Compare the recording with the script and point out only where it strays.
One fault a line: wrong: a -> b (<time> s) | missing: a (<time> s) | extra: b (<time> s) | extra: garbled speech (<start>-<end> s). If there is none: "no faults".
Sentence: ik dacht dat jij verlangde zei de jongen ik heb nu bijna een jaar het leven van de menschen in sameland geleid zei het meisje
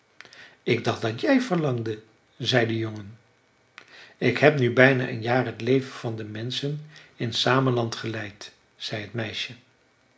no faults